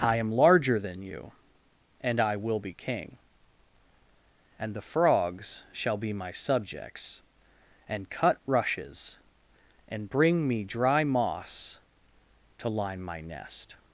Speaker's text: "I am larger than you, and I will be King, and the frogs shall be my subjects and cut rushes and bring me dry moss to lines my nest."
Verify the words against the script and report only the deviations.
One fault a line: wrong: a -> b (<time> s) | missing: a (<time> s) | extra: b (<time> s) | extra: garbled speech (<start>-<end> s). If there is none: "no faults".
wrong: lines -> line (12.7 s)